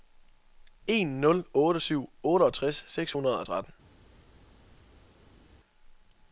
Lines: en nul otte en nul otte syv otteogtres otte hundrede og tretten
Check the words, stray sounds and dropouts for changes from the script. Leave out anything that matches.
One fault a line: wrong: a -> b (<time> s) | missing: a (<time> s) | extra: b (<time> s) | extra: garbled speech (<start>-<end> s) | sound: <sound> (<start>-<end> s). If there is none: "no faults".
missing: en nul otte (1.8 s)
wrong: otte -> seks (2.9 s)